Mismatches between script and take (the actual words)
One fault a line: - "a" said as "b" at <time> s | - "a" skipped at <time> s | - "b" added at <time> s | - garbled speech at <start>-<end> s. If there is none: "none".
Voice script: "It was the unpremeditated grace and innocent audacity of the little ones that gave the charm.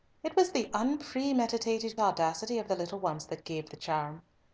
- "grace and innocent" skipped at 1.9 s